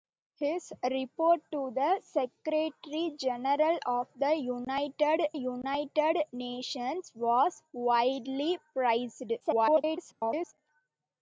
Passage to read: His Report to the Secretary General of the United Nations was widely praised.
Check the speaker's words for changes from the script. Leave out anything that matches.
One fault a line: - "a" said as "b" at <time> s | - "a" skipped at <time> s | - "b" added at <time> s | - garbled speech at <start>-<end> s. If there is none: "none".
- "United" added at 5.3 s
- garbled speech at 9.4-10.5 s